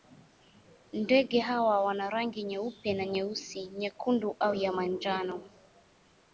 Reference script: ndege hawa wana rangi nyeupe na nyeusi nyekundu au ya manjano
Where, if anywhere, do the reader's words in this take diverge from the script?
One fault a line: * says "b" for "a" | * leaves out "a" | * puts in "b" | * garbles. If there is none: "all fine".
all fine